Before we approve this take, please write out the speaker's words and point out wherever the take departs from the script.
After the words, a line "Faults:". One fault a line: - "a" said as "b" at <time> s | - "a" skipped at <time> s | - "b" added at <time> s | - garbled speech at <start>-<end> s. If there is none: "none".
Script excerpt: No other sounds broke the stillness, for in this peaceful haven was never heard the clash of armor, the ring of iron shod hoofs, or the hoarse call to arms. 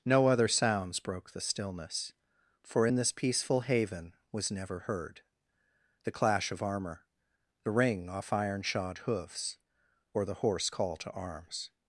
No other sounds broke the stillness, for in this peaceful haven was never heard the clash of armor, the ring off iron shod hoofs, or the hoarse call to arms.
Faults:
- "of" said as "off" at 8.1 s